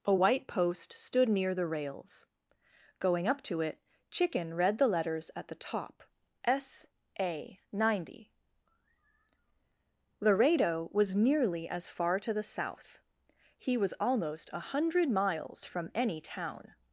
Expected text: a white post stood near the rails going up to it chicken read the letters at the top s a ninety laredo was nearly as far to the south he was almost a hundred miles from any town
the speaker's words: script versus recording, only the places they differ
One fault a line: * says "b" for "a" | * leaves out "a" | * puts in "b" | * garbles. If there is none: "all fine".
all fine